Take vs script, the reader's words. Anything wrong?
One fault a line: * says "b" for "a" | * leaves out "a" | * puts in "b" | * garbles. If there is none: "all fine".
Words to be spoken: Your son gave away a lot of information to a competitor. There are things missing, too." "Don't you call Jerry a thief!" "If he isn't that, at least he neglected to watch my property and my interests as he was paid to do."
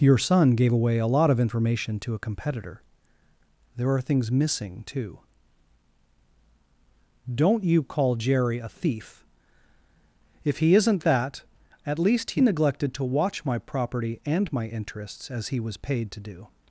all fine